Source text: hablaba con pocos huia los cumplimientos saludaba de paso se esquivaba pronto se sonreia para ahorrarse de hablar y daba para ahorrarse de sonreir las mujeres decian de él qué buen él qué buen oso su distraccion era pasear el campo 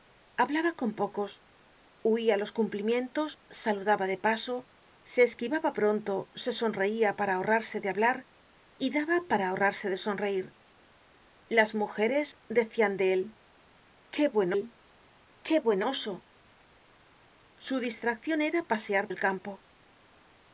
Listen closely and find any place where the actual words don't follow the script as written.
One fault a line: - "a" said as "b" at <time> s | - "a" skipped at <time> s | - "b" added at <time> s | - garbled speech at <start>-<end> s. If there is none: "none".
none